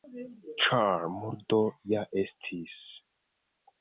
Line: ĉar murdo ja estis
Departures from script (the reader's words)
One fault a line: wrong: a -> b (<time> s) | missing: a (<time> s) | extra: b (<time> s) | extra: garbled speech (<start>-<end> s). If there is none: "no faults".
no faults